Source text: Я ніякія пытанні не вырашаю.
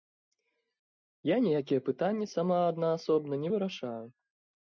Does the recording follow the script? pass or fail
fail